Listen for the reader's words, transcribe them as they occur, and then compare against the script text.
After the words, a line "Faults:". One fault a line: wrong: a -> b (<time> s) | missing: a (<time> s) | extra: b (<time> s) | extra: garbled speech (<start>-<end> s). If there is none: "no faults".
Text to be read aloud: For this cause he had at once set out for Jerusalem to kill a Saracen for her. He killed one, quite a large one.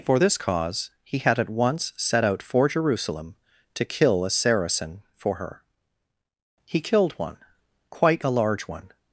For this cause he had at once set out for Jerusalem to kill a Saracen for her. He killed one, quite a large one.
Faults:
no faults